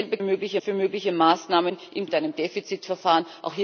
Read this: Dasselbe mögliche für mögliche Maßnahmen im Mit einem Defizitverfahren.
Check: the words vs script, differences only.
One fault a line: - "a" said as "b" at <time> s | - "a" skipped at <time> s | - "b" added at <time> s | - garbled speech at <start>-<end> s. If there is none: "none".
none